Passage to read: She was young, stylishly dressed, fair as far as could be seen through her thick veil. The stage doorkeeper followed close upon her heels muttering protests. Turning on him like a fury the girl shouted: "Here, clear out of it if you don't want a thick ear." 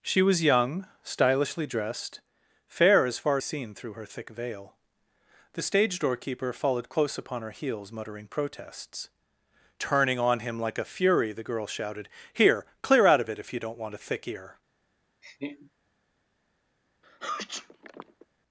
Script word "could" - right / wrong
wrong